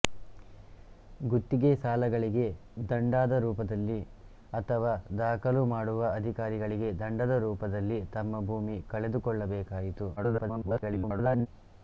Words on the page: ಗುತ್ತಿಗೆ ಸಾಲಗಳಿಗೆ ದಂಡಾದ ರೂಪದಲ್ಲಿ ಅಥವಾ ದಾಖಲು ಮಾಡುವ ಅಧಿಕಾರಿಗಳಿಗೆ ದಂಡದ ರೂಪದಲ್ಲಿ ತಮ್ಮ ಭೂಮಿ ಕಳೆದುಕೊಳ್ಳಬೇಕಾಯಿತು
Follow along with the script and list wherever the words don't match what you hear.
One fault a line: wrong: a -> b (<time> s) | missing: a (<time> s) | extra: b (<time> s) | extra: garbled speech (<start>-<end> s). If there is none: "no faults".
extra: garbled speech (10.2-11.5 s)